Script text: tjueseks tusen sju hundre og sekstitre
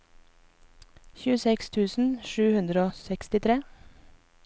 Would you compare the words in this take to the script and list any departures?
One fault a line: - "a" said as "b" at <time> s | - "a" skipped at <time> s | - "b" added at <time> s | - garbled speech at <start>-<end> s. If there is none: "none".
none